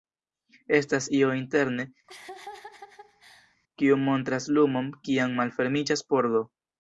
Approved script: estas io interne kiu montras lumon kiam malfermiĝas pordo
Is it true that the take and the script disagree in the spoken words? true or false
false